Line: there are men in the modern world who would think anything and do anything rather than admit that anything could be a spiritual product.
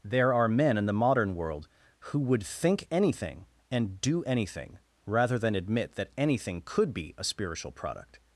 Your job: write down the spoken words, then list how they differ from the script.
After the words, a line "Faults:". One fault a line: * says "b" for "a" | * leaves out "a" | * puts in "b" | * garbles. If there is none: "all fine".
there are men in the modern world who would think anything and do anything rather than admit that anything could be a spiritual product.
Faults:
all fine